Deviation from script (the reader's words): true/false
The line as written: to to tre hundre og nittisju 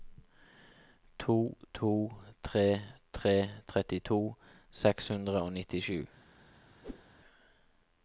true